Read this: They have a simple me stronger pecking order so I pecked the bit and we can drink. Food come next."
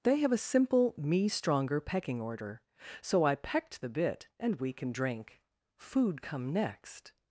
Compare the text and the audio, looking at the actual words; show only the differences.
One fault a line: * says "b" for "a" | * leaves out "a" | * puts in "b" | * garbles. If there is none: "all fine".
all fine